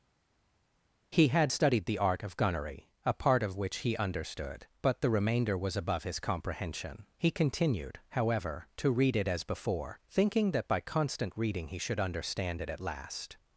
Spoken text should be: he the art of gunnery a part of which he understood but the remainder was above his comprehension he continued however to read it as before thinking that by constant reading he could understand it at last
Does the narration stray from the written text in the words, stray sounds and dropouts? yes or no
yes